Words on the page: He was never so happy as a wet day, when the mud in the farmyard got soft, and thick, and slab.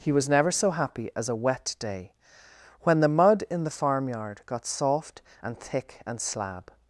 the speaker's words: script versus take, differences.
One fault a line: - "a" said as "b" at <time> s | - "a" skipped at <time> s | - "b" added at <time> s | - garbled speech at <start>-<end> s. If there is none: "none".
none